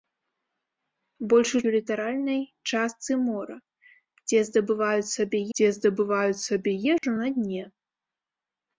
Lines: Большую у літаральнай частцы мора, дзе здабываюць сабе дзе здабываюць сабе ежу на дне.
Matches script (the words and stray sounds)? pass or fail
fail